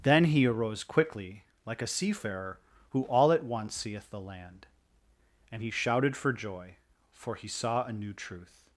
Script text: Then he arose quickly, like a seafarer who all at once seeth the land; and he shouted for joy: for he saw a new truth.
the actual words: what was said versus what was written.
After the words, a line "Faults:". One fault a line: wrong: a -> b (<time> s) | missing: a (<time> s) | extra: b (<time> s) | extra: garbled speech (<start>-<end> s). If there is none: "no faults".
Then he arose quickly, like a seafarer who all at once seeth the land; and he shouted for joy: for he saw a new truth.
Faults:
no faults